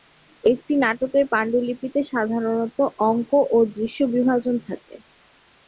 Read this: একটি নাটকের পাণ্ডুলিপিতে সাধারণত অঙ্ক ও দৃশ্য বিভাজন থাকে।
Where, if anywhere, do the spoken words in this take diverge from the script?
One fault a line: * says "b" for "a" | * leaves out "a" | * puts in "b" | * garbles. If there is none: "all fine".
all fine